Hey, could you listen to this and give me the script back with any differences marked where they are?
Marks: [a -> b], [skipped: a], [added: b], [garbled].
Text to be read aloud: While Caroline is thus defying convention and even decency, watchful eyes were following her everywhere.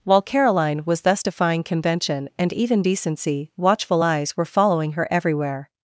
While Caroline [is -> was] thus defying convention and even decency, watchful eyes were following her everywhere.